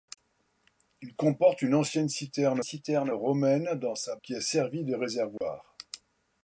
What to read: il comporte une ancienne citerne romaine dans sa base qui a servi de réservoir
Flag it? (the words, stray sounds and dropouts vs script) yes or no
yes